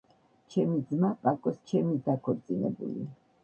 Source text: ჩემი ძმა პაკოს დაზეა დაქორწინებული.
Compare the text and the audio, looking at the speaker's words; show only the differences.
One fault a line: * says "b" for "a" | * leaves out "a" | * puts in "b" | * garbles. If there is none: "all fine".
* says "ჩემი" for "დაზეა"